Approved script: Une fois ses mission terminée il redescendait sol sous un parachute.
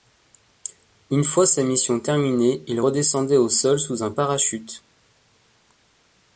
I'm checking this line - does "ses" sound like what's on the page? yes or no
no